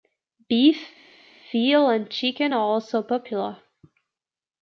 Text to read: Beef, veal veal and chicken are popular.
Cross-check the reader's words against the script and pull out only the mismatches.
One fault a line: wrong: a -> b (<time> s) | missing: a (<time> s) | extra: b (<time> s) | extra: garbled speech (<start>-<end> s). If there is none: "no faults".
missing: veal (1.9 s)
extra: also (2.6 s)